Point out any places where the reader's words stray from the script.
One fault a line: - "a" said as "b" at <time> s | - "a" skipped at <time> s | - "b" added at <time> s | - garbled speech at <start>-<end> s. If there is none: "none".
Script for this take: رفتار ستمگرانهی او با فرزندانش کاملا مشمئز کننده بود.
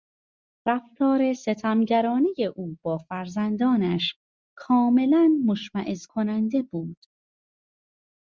none